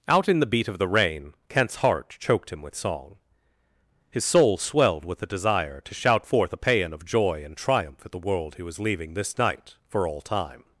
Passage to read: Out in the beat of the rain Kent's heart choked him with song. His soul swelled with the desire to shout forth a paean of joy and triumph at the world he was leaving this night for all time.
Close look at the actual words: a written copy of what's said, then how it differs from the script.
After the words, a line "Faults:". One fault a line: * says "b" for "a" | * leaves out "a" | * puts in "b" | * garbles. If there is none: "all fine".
Out in the beat of the rain Kent's heart choked him with song. His soul swelled with the desire to shout forth a paean of joy and triumph at the world he was leaving this night for all time.
Faults:
all fine